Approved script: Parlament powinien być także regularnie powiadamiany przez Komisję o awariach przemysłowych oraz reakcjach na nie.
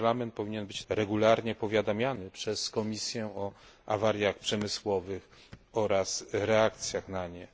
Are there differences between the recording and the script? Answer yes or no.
yes